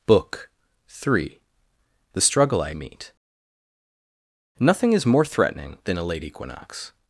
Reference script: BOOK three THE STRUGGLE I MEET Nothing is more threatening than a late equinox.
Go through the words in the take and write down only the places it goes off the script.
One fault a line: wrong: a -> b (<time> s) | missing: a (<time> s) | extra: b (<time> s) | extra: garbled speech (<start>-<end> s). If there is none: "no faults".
no faults